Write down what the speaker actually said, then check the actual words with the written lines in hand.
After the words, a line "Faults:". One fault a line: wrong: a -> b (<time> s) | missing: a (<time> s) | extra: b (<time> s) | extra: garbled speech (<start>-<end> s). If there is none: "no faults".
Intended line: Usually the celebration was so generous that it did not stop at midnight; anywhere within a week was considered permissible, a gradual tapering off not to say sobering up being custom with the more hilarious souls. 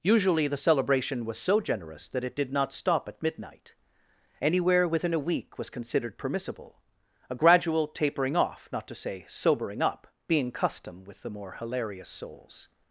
Usually the celebration was so generous that it did not stop at midnight; anywhere within a week was considered permissible, a gradual tapering off not to say sobering up being custom with the more hilarious souls.
Faults:
no faults